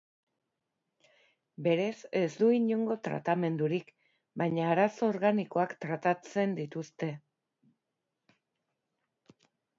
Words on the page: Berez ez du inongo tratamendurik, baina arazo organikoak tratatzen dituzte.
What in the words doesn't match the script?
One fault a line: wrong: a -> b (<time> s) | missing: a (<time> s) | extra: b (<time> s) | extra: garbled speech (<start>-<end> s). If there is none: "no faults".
no faults